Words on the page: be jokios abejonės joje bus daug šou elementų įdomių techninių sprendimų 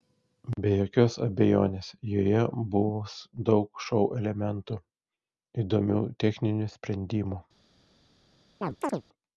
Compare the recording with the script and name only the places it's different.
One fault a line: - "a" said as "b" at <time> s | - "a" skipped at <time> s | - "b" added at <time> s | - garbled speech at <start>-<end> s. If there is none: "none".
none